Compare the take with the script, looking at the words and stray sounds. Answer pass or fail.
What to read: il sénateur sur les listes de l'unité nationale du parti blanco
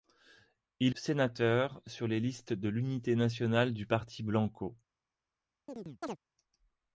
fail